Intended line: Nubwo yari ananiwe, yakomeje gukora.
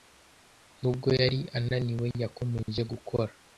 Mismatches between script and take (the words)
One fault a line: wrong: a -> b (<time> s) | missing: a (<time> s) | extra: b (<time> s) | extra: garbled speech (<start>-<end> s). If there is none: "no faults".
no faults